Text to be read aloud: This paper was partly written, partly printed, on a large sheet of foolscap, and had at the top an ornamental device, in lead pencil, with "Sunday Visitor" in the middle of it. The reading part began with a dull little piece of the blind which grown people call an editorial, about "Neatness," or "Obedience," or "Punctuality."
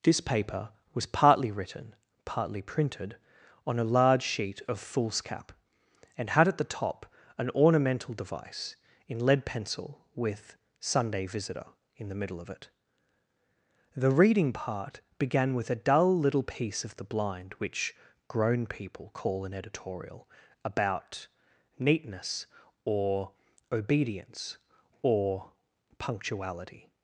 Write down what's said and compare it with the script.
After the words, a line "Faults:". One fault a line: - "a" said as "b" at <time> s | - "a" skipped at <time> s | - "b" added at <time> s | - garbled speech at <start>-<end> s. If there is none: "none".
This paper was partly written, partly printed, on a large sheet of foolscap, and had at the top an ornamental device, in lead pencil, with "Sunday Visitor" in the middle of it. The reading part began with a dull little piece of the blind which grown people call an editorial, about "Neatness," or "Obedience," or "Punctuality."
Faults:
none